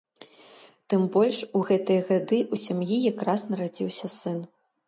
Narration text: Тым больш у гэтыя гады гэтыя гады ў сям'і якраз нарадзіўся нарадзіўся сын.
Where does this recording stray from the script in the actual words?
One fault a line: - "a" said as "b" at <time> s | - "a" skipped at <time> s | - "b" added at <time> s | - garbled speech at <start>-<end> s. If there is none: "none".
- "гэтыя гады" skipped at 2.4 s
- "нарадзіўся" skipped at 4.1 s